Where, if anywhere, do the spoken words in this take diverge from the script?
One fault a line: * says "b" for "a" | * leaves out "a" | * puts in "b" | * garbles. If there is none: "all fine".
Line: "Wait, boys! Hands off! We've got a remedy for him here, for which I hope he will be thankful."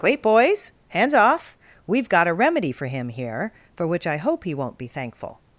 * says "won't" for "will"